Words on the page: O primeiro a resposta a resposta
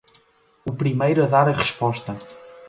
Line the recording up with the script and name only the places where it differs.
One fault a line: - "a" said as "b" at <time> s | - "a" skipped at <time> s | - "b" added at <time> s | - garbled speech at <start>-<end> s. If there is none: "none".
- "resposta" said as "dar" at 1.3 s